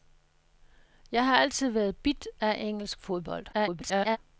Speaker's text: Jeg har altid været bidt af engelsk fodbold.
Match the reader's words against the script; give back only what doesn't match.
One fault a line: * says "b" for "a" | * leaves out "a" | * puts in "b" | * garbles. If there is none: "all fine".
* garbles